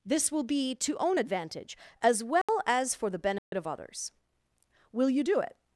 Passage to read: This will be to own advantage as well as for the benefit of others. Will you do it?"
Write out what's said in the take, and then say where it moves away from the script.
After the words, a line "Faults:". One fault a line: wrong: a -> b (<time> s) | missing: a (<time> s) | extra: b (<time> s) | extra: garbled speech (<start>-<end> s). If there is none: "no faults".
This will be to own advantage as well as for the benefit of others. Will you do it?"
Faults:
no faults